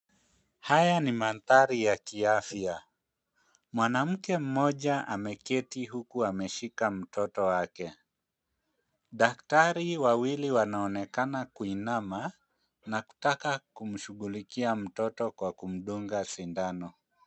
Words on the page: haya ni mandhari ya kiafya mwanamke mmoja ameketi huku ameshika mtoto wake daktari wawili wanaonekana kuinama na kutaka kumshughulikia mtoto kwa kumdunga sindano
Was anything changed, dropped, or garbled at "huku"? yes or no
no